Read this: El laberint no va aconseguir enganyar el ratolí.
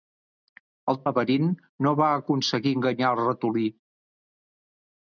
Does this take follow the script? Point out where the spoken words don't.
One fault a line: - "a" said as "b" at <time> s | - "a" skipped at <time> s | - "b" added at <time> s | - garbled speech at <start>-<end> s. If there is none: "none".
none